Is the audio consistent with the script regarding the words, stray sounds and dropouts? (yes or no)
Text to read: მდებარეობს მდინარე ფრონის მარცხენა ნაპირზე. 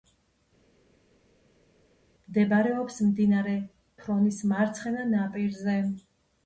yes